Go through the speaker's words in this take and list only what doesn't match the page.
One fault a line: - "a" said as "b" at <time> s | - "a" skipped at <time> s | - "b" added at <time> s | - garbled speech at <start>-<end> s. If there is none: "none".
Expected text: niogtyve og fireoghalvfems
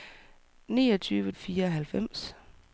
none